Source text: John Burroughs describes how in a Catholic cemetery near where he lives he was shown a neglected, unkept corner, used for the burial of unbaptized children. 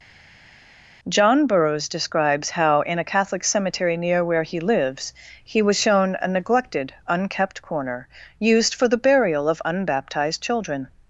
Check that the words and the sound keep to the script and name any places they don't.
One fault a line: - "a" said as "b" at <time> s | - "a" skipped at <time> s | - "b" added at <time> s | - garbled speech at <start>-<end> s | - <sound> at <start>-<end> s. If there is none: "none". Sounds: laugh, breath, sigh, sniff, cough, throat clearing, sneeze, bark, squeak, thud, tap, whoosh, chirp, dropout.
none